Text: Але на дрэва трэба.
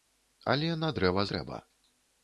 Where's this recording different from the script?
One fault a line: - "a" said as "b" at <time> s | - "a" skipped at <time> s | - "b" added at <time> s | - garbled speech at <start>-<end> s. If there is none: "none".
none